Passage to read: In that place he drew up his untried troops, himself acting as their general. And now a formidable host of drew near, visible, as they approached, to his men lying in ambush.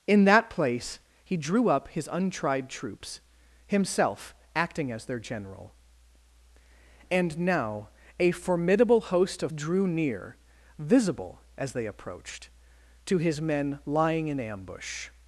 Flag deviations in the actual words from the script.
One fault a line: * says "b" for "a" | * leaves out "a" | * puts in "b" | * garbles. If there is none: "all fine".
all fine